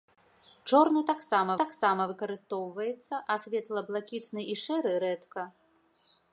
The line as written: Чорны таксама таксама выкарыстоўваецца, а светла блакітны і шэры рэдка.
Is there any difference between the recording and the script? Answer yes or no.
no